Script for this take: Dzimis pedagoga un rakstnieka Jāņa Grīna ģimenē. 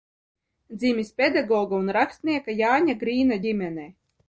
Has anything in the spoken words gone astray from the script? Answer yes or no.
no